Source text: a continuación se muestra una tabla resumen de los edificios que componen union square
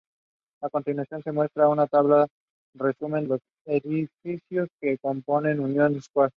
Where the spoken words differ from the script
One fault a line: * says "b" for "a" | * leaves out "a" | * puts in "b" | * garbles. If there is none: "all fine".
* leaves out "de"